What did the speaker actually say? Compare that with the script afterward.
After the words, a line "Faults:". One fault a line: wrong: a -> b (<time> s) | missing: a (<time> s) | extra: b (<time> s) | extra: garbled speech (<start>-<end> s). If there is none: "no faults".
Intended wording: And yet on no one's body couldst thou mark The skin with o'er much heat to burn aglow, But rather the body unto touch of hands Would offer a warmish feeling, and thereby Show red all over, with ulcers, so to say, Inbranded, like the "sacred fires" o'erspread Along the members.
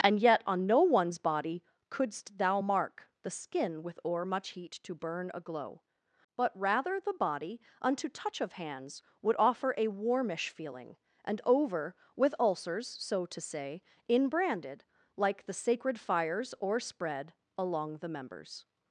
And yet on no one's body couldst thou mark The skin with o'er much heat to burn aglow, But rather the body unto touch of hands Would offer a warmish feeling, and over, with ulcers, so to say, Inbranded, like the "sacred fires" o'erspread Along the members.
Faults:
missing: thereby Show red all (11.4 s)